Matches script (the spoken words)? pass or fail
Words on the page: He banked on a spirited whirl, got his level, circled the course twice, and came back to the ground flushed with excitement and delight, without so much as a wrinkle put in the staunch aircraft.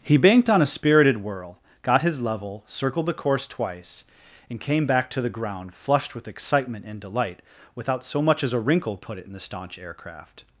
fail